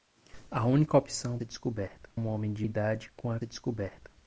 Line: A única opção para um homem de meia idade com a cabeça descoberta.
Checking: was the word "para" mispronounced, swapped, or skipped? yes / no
yes